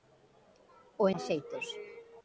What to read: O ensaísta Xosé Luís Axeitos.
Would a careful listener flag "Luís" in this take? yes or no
yes